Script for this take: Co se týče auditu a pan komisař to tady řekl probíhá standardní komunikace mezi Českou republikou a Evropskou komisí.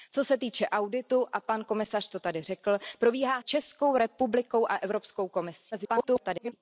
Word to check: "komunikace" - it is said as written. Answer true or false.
false